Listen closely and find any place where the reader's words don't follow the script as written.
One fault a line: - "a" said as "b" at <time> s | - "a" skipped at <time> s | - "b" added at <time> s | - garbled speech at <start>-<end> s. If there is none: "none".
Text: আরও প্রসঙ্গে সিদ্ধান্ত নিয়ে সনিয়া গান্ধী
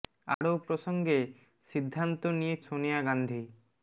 none